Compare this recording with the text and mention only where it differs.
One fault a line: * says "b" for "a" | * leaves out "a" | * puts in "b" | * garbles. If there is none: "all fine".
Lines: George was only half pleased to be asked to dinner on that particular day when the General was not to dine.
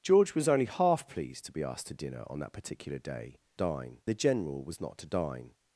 * says "dine" for "when"